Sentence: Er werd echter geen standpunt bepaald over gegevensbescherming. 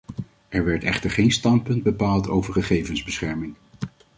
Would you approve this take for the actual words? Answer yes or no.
yes